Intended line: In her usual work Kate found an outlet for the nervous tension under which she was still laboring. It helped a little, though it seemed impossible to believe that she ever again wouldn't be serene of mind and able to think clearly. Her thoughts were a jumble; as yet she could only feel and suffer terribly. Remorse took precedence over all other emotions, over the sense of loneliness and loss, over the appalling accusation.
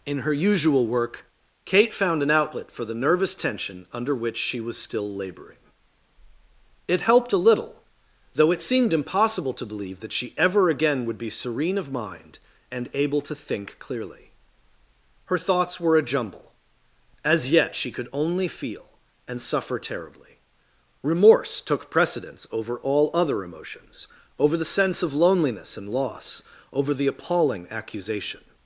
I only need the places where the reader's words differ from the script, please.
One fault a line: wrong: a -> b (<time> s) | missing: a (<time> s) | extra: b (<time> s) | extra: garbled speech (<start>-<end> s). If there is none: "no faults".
wrong: wouldn't -> would (11.1 s)